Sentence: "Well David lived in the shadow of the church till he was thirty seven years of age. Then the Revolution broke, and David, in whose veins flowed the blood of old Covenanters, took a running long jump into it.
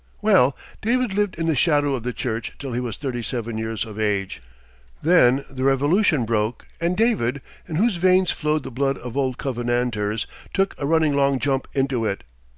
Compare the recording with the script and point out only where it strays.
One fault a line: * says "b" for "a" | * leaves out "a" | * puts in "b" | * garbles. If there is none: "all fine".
all fine